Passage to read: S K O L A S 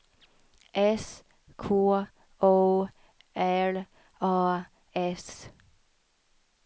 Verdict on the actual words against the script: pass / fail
pass